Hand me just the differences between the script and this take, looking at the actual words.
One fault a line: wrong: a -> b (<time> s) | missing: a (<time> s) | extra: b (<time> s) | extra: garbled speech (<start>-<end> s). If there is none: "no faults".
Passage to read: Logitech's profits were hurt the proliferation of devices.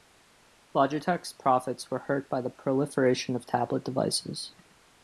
extra: by (2.3 s)
extra: tablet (3.5 s)